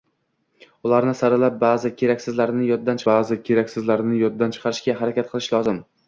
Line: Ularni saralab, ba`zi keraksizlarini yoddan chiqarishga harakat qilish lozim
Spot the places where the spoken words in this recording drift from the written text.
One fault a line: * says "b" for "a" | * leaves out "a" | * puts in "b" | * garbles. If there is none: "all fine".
* puts in "ba`zi keraksizlarini yoddan"